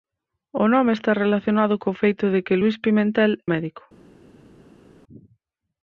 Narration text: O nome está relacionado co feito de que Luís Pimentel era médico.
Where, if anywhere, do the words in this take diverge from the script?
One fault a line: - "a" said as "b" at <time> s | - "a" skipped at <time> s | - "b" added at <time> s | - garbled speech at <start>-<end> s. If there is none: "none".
- "era" skipped at 3.3 s